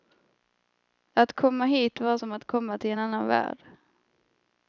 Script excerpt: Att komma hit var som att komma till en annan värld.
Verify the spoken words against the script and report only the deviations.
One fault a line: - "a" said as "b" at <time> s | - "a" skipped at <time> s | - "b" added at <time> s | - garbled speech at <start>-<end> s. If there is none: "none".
none